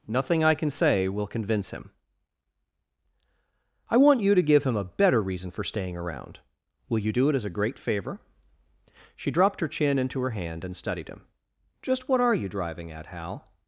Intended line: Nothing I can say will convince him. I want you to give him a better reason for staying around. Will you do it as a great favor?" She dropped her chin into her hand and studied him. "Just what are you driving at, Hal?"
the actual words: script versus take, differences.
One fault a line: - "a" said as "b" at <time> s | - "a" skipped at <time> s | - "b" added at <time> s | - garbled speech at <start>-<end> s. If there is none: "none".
none